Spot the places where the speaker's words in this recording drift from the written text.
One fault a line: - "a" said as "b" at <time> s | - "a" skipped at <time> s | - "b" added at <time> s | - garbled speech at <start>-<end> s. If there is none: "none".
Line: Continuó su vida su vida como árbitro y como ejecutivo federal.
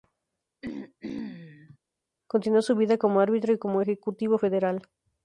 - "su vida" skipped at 3.0 s